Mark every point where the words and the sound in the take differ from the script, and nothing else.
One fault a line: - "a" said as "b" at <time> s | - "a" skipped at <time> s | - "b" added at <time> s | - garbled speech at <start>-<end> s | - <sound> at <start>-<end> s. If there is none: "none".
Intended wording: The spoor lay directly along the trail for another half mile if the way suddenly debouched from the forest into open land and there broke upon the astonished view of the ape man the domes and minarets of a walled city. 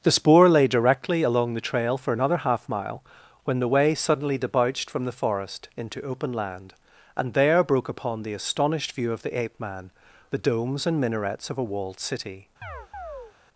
- "if" said as "when" at 3.5 s
- chirp at 12.6-13.3 s